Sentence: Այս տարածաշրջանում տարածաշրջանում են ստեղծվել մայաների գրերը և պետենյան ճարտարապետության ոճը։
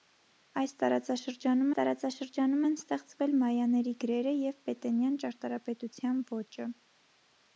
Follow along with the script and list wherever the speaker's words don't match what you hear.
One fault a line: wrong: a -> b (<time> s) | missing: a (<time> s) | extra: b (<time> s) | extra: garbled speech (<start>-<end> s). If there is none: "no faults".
no faults